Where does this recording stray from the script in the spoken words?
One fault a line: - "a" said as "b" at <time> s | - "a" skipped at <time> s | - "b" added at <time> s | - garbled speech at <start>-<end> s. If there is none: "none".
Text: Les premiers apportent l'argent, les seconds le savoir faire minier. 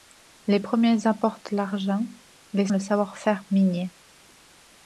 - "seconds" skipped at 2.7 s